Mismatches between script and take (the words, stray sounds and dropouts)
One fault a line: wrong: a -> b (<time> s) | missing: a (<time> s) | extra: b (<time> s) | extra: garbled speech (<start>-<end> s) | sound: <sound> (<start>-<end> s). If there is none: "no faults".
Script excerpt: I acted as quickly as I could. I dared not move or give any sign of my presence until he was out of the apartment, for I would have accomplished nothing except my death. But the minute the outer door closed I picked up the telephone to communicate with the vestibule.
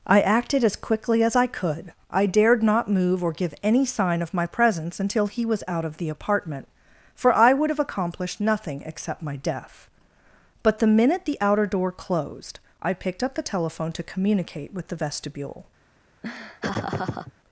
sound: laugh (16.2-17.3 s)